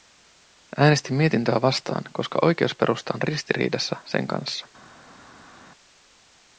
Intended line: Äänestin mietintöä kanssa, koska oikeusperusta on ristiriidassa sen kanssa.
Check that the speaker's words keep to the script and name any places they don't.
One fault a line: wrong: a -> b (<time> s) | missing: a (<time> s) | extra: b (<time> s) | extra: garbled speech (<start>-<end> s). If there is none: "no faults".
wrong: kanssa -> vastaan (1.6 s)